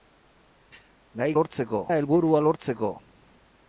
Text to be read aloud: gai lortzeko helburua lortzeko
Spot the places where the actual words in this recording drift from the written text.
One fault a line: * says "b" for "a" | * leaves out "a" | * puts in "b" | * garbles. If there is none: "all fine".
all fine